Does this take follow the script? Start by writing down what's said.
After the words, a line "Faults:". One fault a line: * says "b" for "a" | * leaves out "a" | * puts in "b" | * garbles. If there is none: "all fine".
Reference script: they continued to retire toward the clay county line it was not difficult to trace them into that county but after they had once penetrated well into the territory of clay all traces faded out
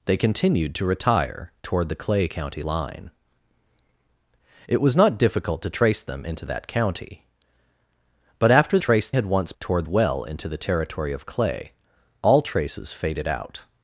they continued to retire toward the clay county line it was not difficult to trace them into that county but after trace had once toward well into the territory of clay all traces faded out
Faults:
* says "trace" for "they"
* says "toward" for "penetrated"